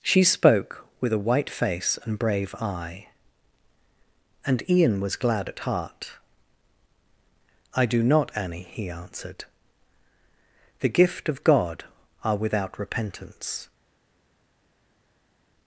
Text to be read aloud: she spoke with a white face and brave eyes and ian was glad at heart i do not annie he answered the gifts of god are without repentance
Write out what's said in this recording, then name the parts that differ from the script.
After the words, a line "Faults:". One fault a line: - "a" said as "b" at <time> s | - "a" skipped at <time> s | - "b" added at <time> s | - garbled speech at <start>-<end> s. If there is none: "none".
she spoke with a white face and brave eye and ian was glad at heart i do not annie he answered the gift of god are without repentance
Faults:
- "eyes" said as "eye" at 2.5 s
- "gifts" said as "gift" at 10.9 s